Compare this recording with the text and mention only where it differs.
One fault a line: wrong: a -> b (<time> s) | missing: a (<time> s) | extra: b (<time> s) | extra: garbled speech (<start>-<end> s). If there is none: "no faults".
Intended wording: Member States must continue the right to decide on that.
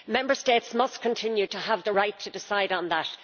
extra: to have (1.5 s)